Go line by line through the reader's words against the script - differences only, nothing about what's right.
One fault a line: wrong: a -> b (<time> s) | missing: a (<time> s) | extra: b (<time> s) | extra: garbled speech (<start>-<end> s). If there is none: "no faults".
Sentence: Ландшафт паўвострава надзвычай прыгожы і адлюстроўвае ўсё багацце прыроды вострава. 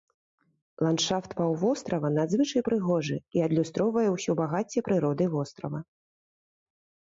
no faults